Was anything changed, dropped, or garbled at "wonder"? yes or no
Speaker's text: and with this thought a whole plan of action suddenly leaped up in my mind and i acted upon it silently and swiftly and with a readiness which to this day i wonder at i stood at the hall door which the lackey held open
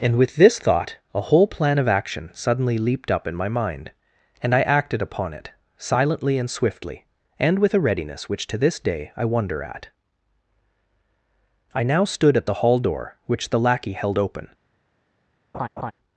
no